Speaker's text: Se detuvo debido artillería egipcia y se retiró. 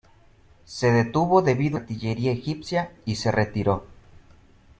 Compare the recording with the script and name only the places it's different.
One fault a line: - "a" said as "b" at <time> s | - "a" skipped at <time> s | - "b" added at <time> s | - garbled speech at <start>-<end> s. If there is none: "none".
none